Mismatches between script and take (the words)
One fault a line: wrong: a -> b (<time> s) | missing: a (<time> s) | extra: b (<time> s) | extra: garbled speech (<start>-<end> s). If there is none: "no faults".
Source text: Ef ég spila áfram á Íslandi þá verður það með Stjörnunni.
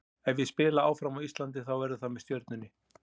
no faults